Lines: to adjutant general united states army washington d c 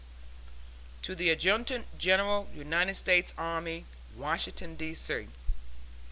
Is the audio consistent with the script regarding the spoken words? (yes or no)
no